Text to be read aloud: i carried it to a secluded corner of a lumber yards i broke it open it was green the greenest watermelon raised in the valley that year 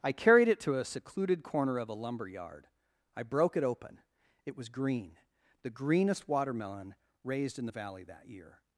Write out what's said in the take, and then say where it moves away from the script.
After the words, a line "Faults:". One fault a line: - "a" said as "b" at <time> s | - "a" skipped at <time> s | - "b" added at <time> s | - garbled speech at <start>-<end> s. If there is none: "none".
i carried it to a secluded corner of a lumber yard i broke it open it was green the greenest watermelon raised in the valley that year
Faults:
- "yards" said as "yard" at 2.3 s